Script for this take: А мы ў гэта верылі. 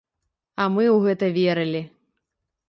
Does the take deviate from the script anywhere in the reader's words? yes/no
no